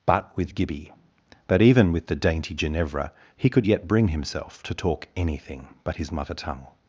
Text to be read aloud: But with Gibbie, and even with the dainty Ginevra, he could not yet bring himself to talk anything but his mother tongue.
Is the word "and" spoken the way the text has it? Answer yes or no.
no